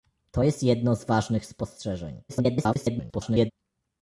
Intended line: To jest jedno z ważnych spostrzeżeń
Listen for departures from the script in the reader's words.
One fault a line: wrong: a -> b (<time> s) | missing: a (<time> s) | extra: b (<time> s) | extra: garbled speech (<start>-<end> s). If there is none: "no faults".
extra: garbled speech (2.3-3.5 s)